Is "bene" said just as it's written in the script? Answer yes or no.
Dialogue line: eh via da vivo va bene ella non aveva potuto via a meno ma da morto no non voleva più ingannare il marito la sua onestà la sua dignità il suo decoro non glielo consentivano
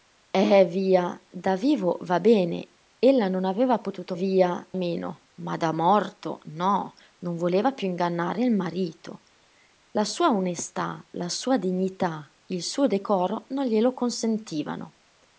yes